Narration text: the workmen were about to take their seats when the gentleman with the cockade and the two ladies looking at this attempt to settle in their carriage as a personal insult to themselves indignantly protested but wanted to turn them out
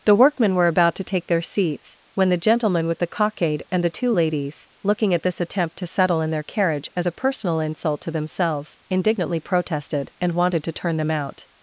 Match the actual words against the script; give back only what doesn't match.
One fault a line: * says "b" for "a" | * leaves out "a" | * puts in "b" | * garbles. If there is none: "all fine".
* says "and" for "but"